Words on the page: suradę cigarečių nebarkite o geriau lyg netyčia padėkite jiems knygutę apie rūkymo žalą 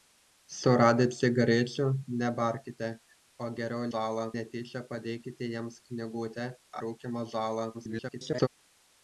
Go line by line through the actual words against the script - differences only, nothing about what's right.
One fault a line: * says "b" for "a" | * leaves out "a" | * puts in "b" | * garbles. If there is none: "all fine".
* says "žalą" for "lyg"
* leaves out "apie"
* garbles